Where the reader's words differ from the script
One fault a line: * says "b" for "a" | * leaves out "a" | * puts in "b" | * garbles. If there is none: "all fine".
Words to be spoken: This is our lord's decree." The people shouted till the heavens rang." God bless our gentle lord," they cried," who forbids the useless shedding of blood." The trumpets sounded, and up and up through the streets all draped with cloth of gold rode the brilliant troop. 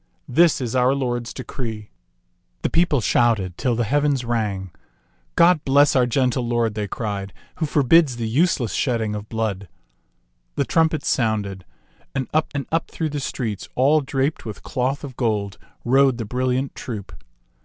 all fine